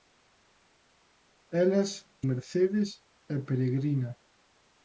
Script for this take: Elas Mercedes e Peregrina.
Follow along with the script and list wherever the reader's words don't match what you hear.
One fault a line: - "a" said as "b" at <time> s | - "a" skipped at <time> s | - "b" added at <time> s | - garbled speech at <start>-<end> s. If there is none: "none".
none